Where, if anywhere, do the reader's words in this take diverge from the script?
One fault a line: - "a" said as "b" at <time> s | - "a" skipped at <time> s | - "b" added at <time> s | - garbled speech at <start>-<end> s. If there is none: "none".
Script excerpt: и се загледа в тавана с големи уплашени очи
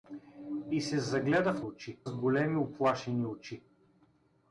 - "тавана" said as "очи" at 1.6 s